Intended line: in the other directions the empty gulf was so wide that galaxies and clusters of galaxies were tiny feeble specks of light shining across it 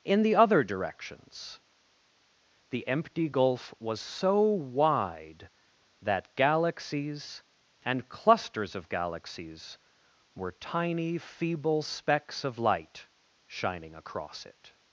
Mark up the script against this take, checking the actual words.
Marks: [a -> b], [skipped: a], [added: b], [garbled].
in the other directions the empty gulf was so wide that galaxies and clusters of galaxies were tiny feeble specks of light shining across it